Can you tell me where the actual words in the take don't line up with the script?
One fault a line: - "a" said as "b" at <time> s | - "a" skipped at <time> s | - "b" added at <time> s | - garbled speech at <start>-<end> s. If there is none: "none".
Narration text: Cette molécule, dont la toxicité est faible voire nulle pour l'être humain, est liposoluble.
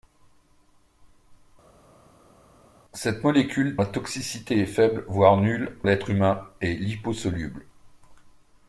- "dont" skipped at 3.8 s
- "pour" skipped at 5.8 s